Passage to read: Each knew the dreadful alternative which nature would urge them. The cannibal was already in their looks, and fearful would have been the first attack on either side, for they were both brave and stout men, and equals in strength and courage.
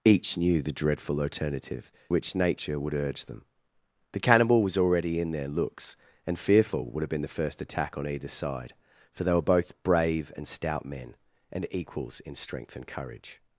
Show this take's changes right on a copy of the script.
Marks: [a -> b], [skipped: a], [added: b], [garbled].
Each knew the dreadful alternative which nature would urge them. The cannibal was already in their looks, and fearful would have been the first attack on either side, for they were both brave and stout men, and equals in strength and courage.